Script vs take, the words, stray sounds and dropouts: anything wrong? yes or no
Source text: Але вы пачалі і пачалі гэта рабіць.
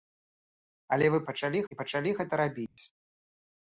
yes